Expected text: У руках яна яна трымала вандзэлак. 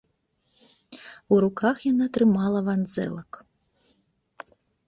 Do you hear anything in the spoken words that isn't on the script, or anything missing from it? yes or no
yes